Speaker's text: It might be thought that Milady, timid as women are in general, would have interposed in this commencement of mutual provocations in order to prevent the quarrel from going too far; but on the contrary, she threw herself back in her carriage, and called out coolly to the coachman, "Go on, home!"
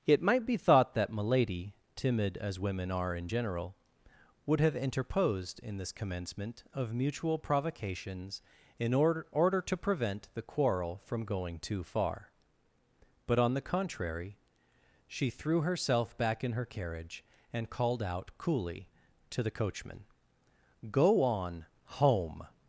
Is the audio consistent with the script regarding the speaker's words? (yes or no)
no